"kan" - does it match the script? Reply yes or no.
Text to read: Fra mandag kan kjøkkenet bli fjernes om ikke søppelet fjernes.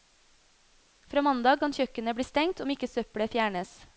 yes